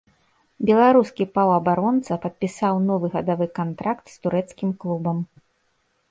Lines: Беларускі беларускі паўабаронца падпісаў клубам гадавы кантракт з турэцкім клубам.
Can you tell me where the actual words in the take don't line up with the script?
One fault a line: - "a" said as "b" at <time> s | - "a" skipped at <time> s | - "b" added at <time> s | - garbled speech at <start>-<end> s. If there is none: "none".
- "беларускі" skipped at 1.3 s
- "клубам" said as "новы" at 2.9 s